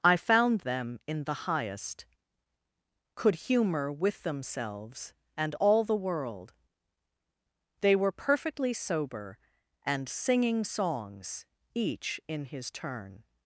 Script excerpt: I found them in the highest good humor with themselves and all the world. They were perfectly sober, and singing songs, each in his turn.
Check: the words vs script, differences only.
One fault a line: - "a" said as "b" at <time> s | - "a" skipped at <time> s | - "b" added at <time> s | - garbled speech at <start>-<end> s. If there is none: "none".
- "good" said as "could" at 3.1 s